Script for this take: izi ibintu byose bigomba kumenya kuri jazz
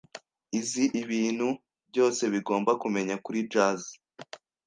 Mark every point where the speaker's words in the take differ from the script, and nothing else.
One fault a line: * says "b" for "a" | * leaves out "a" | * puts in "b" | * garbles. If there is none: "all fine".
all fine